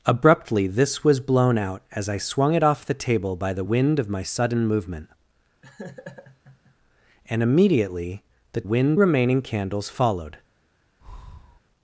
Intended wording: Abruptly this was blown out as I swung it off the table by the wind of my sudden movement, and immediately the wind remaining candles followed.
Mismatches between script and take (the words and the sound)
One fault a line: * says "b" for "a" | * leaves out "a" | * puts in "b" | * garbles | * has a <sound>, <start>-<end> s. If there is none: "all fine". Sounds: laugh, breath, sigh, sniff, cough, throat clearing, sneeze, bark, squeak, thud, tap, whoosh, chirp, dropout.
* has a laugh, 5.6-6.7 s
* has a breath, 11.0-11.6 s